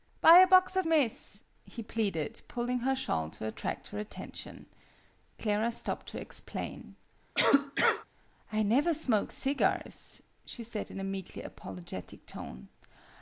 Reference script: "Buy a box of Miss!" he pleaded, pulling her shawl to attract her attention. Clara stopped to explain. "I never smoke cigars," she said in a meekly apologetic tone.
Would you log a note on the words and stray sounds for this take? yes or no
yes